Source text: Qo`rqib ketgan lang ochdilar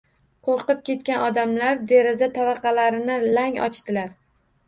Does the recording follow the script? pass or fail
fail